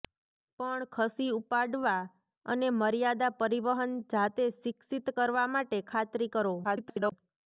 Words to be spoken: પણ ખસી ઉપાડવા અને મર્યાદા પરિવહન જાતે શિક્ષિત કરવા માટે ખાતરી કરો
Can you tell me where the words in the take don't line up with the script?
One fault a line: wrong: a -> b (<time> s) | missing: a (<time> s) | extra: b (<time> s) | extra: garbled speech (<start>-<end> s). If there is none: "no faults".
extra: garbled speech (6.6-7.1 s)